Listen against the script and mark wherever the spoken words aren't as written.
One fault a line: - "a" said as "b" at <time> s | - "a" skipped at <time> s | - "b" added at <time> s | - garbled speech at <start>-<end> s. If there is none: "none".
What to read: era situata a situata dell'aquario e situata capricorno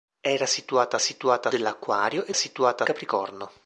none